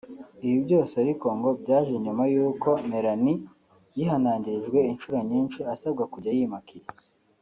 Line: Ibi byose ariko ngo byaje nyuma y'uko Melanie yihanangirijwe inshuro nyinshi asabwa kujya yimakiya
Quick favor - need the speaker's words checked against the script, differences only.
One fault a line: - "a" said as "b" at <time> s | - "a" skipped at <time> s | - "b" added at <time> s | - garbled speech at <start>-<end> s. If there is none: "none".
none